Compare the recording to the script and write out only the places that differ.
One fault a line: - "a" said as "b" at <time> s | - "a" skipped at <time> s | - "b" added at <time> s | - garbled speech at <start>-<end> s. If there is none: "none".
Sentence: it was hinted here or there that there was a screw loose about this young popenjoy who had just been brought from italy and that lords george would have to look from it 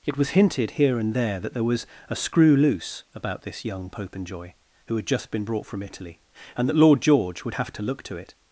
- "or" said as "and" at 1.0 s
- "lords" said as "lord" at 6.8 s
- "from" said as "to" at 8.0 s